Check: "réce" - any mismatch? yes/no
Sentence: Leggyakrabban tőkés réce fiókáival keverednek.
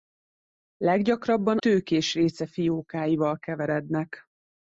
no